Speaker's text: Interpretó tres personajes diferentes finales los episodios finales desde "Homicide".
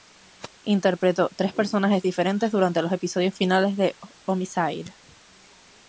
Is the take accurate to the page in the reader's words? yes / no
no